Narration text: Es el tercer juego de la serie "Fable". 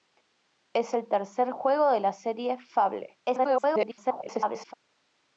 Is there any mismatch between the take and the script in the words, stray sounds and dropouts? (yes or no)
yes